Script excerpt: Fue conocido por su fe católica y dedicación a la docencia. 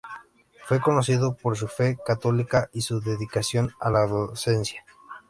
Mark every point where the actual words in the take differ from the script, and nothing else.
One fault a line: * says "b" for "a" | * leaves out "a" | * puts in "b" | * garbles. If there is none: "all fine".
* puts in "su"